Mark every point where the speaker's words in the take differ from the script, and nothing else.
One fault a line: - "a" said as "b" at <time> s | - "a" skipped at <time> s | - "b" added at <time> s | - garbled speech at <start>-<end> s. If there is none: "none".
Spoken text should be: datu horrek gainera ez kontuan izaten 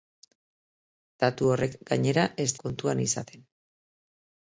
none